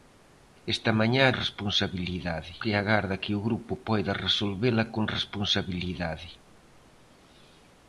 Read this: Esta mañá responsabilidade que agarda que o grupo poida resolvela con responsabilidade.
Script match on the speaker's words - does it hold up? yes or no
yes